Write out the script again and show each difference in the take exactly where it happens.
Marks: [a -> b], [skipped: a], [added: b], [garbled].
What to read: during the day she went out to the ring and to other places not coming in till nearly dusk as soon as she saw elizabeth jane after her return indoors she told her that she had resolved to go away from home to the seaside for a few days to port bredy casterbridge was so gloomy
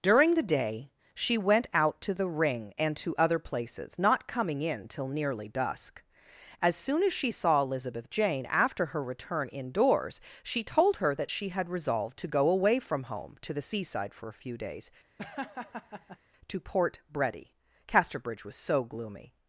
during the day she went out to the ring and to other places not coming in till nearly dusk as soon as she saw elizabeth jane after her return indoors she told her that she had resolved to go away from home to the seaside for a few days to port bredy casterbridge was so gloomy